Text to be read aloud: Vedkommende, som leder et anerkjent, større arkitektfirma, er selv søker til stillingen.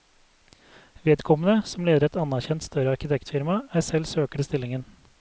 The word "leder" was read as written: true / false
true